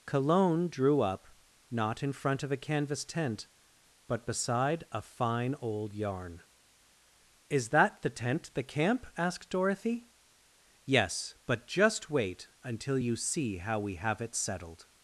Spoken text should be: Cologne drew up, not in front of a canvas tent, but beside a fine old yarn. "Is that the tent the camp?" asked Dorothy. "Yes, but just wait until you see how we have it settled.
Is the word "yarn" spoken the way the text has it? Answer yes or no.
yes